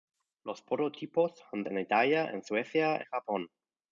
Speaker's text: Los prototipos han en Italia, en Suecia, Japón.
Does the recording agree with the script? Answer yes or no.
yes